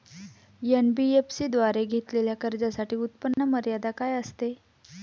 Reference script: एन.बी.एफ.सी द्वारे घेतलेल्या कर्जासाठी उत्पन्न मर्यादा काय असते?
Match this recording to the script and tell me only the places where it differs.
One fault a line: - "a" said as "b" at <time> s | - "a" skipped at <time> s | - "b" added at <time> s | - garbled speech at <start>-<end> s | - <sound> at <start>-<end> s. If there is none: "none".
- dropout at 3.3-3.4 s